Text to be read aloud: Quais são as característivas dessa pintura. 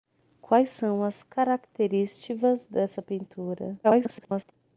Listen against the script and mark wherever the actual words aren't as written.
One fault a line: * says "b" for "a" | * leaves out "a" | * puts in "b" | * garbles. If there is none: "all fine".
* garbles